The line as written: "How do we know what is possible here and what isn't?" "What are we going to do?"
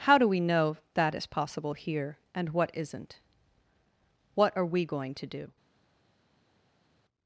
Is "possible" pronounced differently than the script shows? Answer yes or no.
no